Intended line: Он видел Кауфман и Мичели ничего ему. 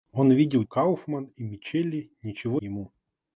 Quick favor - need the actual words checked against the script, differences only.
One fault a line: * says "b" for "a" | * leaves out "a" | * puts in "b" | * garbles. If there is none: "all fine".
all fine